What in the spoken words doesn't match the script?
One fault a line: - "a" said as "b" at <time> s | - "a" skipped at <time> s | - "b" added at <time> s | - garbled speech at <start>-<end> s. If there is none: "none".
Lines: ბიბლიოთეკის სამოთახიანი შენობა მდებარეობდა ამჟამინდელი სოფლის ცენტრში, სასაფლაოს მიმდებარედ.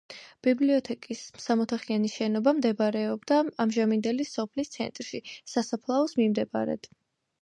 none